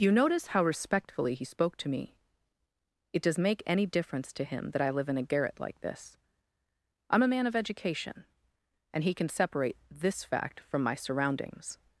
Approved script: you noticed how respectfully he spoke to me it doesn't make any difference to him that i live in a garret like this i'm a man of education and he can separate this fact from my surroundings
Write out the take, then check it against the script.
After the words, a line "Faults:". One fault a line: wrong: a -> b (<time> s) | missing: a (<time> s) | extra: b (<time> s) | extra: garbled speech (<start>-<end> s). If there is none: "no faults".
you notice how respectfully he spoke to me it does make any difference to him that i live in a garret like this i'm a man of education and he can separate this fact from my surroundings
Faults:
wrong: noticed -> notice (0.1 s)
wrong: doesn't -> does (3.2 s)